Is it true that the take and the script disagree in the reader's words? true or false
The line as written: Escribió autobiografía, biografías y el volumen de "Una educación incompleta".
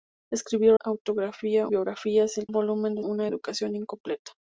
false